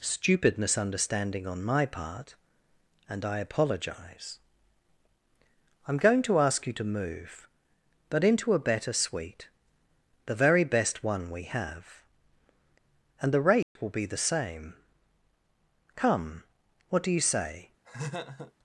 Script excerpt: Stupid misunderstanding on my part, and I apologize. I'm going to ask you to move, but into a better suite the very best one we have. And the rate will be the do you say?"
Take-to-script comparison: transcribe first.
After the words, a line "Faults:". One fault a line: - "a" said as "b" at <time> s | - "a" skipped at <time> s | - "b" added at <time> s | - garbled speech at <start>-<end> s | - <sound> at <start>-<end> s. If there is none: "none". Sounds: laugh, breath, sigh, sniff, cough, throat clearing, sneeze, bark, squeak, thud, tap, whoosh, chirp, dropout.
Stupid misunderstanding on my part, and I apologize. I'm going to ask you to move, but into a better suite the very best one we have. And the rate will be the same. Come! What do you say?"
Faults:
- dropout at 13.6-13.8 s
- "same Come What" added at 14.2 s
- laugh at 17.8-18.5 s